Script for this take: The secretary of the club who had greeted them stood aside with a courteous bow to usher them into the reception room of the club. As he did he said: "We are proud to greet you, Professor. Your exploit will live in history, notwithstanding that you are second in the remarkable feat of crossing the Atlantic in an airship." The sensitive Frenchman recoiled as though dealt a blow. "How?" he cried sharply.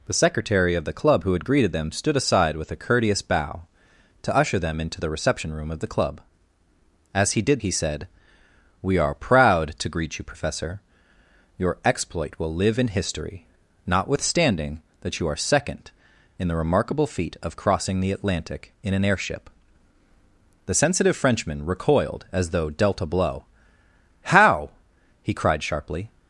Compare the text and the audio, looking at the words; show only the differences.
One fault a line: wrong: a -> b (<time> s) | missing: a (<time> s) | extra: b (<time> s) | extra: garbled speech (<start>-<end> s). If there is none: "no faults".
no faults